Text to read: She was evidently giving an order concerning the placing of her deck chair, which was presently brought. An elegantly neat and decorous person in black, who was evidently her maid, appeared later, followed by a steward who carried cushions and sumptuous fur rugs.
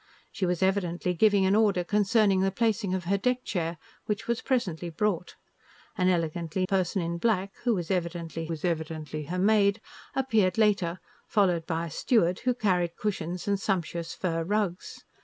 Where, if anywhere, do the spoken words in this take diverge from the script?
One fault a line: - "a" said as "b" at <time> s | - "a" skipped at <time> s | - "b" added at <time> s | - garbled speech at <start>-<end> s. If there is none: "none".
- "neat and decorous" skipped at 6.7 s
- "was evidently" added at 8.5 s